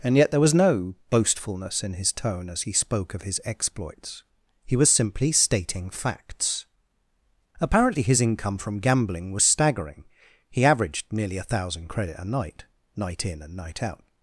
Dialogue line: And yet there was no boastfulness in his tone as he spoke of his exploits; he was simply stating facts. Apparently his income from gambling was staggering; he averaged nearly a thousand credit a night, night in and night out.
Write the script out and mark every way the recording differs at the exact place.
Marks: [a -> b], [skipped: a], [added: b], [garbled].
And yet there was no boastfulness in his tone as he spoke of his exploits; he was simply stating facts. Apparently his income from gambling was staggering; he averaged nearly a thousand credit a night, night in and night out.